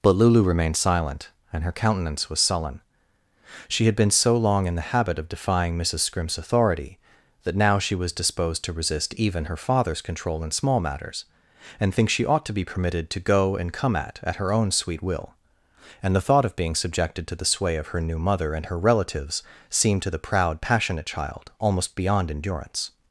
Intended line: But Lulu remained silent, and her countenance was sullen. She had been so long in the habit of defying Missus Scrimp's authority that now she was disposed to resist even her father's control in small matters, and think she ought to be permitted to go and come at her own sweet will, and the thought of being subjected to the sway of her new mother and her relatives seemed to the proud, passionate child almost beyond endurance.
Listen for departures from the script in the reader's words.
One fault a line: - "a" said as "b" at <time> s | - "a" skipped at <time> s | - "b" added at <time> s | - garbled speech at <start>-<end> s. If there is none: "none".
- "at" added at 14.2 s